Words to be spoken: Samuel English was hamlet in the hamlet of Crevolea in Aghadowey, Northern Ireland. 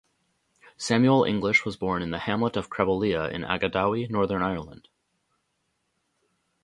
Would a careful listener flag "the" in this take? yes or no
no